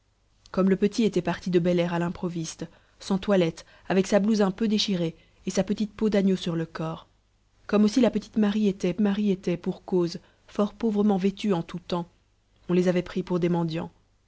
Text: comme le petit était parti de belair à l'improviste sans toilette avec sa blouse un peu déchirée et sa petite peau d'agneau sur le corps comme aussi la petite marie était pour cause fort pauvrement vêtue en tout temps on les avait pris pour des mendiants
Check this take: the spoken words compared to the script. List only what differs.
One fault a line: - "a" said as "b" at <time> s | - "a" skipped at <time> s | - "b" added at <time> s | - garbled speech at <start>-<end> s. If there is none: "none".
- "marie était" added at 9.0 s